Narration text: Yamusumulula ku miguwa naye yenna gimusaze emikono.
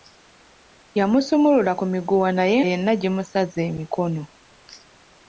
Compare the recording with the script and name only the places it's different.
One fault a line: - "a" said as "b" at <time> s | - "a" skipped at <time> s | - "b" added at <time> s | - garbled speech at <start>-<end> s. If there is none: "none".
none